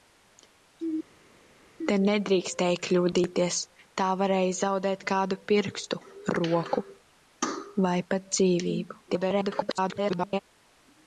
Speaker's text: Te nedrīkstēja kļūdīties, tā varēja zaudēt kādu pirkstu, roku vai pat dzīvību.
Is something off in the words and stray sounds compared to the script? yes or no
yes